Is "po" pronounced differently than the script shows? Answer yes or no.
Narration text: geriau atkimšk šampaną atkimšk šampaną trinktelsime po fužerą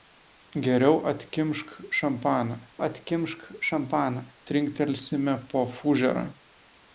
no